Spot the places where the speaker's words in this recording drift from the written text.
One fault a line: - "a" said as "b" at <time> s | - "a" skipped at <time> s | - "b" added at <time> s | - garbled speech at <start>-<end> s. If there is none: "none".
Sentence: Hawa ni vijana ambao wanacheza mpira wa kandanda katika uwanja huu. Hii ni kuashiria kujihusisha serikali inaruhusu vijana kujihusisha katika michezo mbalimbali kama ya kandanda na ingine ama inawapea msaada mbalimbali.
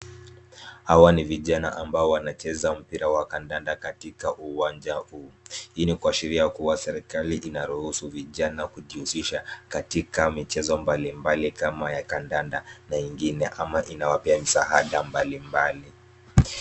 - "kujihusisha" said as "kuwa" at 6.5 s